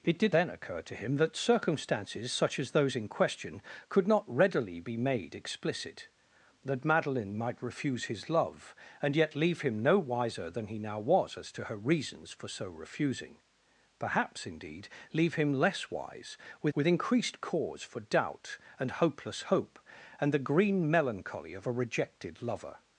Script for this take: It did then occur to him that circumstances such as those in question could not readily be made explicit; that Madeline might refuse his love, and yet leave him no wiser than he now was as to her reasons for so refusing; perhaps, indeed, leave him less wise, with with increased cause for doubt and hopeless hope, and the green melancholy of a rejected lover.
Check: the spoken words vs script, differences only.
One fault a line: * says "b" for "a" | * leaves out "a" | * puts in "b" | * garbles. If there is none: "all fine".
all fine